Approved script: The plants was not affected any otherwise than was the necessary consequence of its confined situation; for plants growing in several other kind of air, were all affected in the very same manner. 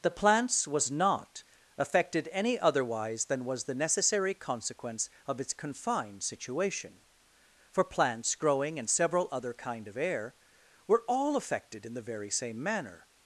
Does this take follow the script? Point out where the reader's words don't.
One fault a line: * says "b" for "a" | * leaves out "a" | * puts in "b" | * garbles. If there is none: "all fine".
all fine